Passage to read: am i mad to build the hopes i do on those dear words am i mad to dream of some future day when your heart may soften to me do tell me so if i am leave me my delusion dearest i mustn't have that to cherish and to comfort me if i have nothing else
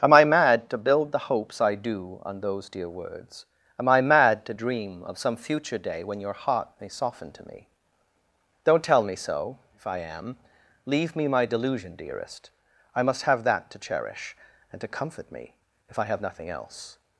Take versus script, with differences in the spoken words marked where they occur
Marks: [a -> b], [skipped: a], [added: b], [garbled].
am i mad to build the hopes i do on those dear words am i mad to dream of some future day when your heart may soften to me [do -> don't] tell me so if i am leave me my delusion dearest i [mustn't -> must] have that to cherish and to comfort me if i have nothing else